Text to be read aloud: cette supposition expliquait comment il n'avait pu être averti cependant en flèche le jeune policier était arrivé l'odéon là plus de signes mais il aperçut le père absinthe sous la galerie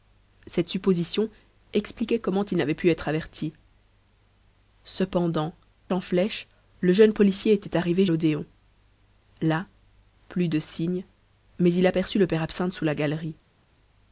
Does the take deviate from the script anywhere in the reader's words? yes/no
no